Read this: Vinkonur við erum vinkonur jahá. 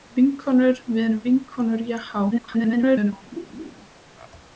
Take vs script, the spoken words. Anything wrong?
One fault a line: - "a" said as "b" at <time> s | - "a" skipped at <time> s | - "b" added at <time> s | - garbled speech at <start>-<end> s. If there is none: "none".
- garbled speech at 2.3-3.1 s